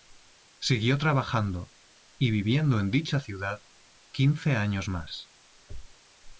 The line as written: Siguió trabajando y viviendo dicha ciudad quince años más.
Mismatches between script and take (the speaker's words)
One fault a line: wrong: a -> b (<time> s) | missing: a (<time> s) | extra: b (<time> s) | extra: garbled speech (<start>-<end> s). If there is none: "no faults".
extra: en (2.8 s)